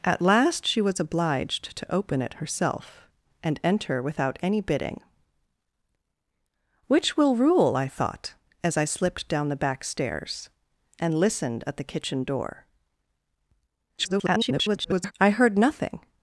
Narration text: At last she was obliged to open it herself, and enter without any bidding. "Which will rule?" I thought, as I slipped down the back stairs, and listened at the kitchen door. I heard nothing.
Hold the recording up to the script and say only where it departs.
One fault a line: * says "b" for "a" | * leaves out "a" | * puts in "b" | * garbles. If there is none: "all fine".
* garbles